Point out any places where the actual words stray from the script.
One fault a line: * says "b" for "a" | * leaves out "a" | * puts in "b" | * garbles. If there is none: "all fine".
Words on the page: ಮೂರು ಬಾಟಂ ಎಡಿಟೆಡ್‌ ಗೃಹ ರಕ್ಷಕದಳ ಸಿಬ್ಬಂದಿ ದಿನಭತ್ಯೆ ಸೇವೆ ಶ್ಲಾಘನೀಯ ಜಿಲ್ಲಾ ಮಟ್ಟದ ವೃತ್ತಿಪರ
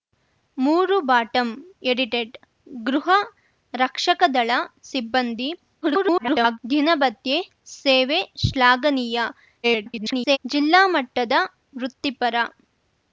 * garbles
* garbles